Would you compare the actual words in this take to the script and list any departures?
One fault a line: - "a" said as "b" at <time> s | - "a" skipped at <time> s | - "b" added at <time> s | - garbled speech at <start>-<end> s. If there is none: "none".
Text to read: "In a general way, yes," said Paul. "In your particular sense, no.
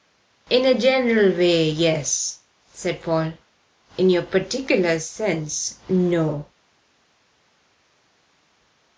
none